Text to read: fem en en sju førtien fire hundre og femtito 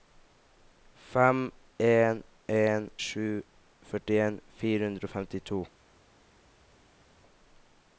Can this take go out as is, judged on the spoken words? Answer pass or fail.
pass